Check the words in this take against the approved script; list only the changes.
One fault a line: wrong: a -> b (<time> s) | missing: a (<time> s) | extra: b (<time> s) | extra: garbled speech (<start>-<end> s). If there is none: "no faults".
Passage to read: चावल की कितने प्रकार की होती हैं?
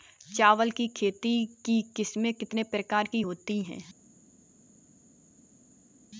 extra: खेती की किस्में (0.9 s)